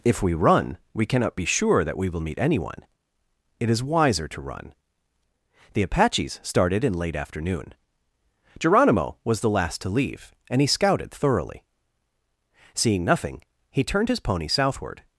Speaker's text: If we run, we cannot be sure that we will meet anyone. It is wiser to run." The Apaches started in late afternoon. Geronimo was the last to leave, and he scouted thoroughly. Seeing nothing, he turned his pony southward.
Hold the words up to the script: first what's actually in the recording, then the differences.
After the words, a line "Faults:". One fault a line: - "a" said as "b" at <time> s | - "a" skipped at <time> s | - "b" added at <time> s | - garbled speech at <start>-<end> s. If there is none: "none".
If we run, we cannot be sure that we will meet anyone. It is wiser to run." The Apaches started in late afternoon. Geronimo was the last to leave, and he scouted thoroughly. Seeing nothing, he turned his pony southward.
Faults:
none